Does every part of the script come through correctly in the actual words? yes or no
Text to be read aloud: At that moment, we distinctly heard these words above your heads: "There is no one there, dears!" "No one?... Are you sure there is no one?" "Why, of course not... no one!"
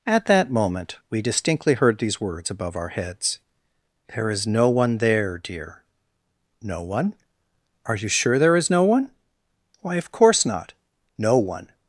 no